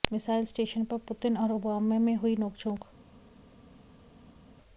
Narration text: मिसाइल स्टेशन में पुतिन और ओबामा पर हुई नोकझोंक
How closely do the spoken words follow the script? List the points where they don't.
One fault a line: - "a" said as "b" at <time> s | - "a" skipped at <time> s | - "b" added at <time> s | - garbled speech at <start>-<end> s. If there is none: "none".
- "में" said as "पर" at 0.8 s
- "पर" said as "में" at 2.0 s